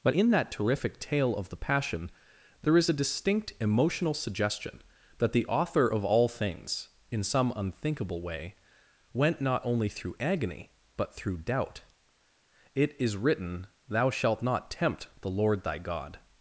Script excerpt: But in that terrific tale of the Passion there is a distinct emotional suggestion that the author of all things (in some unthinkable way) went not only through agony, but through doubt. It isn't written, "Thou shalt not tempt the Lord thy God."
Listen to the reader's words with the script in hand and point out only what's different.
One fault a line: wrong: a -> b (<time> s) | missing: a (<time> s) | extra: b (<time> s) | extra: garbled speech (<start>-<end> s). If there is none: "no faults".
wrong: isn't -> is (13.0 s)